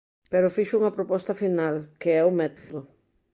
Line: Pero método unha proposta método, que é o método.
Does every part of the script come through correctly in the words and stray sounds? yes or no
no